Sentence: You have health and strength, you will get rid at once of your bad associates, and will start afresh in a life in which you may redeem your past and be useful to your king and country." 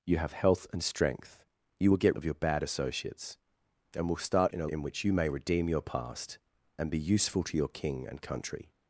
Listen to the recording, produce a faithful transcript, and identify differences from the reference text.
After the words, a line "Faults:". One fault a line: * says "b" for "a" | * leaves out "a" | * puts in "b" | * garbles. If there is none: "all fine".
You have health and strength, you will get of your bad associates, and will start in a in which you may redeem your past and be useful to your king and country."
Faults:
* leaves out "rid at once"
* leaves out "afresh"
* leaves out "life"